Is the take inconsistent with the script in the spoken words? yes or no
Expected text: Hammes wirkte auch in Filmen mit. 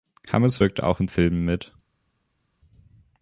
no